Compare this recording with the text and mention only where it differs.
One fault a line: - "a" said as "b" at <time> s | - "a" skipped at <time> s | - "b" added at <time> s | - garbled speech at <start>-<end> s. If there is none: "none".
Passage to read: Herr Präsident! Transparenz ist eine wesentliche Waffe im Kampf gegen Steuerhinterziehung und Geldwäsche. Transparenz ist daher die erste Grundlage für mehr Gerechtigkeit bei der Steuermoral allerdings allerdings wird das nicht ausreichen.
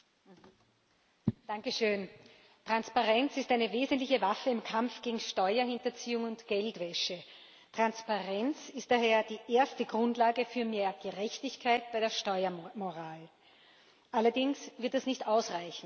- "allerdings" skipped at 14.7 s